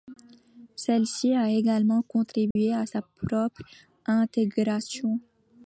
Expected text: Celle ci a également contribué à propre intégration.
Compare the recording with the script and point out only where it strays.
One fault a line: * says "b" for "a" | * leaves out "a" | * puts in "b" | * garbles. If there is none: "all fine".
* puts in "sa"